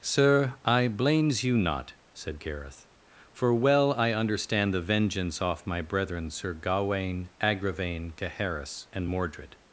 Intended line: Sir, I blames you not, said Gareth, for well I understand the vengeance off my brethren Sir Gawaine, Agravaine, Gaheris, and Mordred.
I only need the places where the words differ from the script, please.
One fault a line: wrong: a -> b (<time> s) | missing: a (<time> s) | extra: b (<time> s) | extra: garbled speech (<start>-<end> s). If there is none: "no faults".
no faults